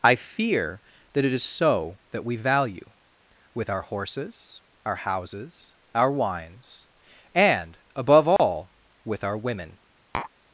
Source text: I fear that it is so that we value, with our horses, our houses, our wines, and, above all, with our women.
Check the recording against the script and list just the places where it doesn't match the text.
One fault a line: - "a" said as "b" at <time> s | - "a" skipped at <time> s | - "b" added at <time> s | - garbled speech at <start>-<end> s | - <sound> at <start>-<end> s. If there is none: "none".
- dropout at 8.4-8.4 s
- tap at 10.1-10.3 s